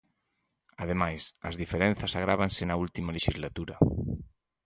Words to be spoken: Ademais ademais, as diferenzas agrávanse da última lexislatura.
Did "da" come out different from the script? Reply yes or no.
yes